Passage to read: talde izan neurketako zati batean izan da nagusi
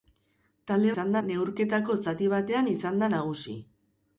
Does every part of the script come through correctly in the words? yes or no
yes